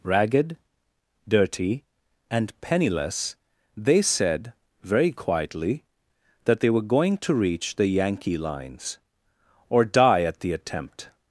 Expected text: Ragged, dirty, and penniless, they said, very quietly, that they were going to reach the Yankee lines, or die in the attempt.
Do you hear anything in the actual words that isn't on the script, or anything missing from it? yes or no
yes